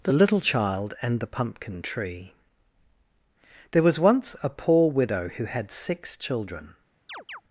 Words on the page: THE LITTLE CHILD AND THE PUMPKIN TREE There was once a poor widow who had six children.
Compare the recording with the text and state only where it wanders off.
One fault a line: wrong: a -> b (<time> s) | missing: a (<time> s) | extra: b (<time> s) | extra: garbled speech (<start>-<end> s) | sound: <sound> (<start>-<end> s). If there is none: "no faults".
sound: chirp (7.1-7.4 s)